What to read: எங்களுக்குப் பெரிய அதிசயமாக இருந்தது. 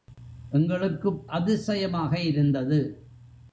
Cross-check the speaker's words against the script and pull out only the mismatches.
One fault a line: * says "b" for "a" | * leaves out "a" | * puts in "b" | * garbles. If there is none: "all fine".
* leaves out "பெரிய"